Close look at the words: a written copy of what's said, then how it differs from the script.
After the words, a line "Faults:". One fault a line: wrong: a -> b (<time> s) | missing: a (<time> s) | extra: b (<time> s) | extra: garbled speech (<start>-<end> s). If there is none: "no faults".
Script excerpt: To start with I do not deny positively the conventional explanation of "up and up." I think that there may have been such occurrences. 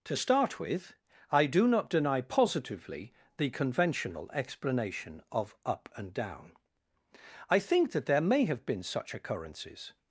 To start with I do not deny positively the conventional explanation of "up and down." I think that there may have been such occurrences.
Faults:
wrong: up -> down (6.1 s)